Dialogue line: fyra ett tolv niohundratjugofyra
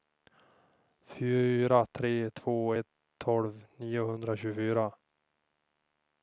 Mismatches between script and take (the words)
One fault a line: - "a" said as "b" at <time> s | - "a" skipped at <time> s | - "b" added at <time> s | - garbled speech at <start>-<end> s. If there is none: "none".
- "tre två" added at 1.9 s